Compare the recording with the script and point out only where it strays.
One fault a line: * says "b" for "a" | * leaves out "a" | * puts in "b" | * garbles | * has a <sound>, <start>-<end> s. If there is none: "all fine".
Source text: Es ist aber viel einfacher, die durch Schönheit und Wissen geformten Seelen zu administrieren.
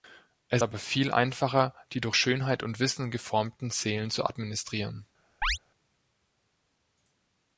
* leaves out "ist"
* has a chirp, 5.4-5.6 s